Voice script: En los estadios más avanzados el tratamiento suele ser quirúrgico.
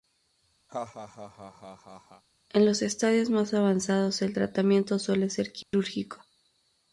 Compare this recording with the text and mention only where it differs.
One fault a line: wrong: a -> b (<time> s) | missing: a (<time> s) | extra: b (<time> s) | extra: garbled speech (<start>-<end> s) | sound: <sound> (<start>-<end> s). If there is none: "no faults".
sound: laugh (0.7-2.2 s)
sound: dropout (5.6-5.7 s)